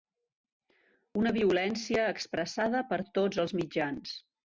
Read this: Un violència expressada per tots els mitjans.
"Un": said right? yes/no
no